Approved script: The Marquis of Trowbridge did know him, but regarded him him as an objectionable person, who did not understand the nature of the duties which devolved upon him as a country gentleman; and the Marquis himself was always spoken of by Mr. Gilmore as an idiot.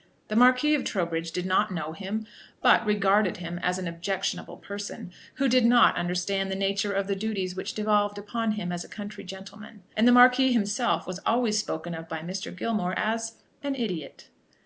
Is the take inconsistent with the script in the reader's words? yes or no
yes